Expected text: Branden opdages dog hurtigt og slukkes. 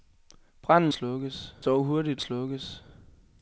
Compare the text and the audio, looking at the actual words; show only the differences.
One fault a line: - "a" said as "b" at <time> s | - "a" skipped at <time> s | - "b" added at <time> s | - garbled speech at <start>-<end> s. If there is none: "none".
- "opdages" said as "slukkes" at 0.9 s
- "og" skipped at 2.2 s